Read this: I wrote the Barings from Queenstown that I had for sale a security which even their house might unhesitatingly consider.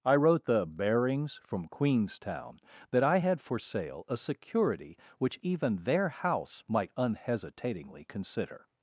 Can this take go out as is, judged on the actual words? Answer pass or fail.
pass